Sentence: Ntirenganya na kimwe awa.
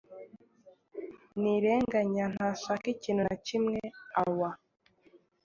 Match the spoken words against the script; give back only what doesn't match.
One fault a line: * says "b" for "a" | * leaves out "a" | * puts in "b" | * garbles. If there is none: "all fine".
* puts in "ntashaka ikintu"